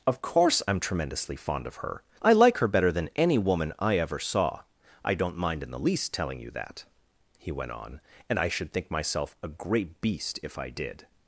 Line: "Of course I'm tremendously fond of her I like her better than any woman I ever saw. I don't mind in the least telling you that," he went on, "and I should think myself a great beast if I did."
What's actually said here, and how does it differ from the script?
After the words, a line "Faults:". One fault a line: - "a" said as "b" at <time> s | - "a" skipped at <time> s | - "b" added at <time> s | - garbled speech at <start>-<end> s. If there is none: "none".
"Of course I'm tremendously fond of her I like her better than any woman I ever saw. I don't mind in the least telling you that," he went on, "and I should think myself a great beast if I did."
Faults:
none